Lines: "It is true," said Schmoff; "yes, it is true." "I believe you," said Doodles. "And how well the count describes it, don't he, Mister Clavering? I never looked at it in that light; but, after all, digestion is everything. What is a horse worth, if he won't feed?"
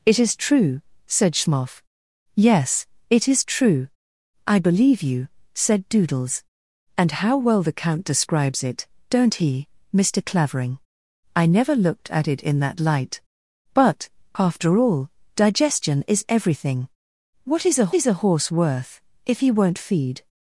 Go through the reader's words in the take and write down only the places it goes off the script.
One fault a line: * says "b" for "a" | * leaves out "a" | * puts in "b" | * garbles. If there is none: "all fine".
* puts in "is a"